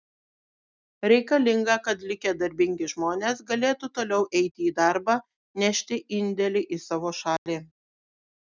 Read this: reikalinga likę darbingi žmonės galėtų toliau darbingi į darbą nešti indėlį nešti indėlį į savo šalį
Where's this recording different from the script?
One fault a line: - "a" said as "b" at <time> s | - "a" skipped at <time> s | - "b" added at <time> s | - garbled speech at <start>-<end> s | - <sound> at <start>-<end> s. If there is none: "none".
- "kad" added at 1.9 s
- "darbingi" said as "eiti" at 4.4 s
- "nešti indėlį" skipped at 6.6 s
- dropout at 7.4-7.5 s